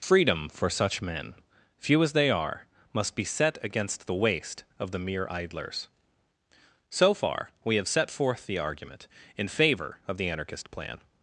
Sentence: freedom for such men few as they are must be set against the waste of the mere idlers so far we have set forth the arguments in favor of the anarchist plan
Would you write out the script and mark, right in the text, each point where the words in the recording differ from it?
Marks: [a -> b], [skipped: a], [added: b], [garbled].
freedom for such men few as they are must be set against the waste of the mere idlers so far we have set forth the [arguments -> argument] in favor of the anarchist plan